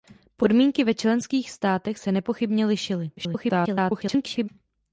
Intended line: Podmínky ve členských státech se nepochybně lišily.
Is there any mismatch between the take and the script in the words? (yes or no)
yes